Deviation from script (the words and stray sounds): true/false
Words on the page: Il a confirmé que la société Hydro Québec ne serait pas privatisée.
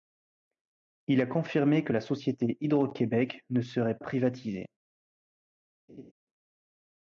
true